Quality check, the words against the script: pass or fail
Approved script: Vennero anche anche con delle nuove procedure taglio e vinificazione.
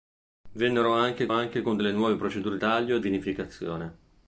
pass